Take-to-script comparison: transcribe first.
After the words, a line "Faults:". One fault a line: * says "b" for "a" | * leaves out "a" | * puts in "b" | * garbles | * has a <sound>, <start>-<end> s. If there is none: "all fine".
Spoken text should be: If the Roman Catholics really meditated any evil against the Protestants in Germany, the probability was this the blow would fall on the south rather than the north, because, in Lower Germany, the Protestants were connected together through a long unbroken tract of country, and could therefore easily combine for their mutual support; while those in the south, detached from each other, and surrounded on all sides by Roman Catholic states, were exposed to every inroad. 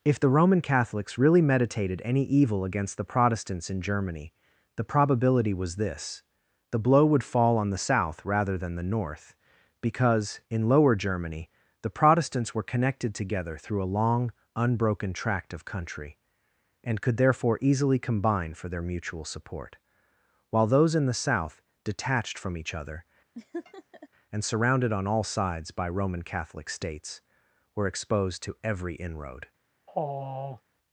If the Roman Catholics really meditated any evil against the Protestants in Germany, the probability was this the blow would fall on the south rather than the north, because, in Lower Germany, the Protestants were connected together through a long unbroken tract of country, and could therefore easily combine for their mutual support; while those in the south, detached from each other, and surrounded on all sides by Roman Catholic states, were exposed to every inroad.
Faults:
* has a laugh, 23.3-24.1 s
* has a sigh, 29.9-30.6 s